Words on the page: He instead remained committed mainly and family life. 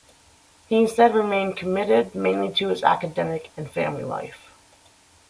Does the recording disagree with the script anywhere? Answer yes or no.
yes